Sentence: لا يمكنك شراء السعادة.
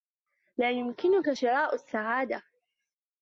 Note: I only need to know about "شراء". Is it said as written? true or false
true